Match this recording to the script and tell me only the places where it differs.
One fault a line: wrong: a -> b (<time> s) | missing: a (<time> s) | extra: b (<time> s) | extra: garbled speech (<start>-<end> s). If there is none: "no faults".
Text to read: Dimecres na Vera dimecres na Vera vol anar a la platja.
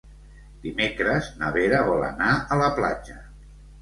missing: dimecres na Vera (1.8 s)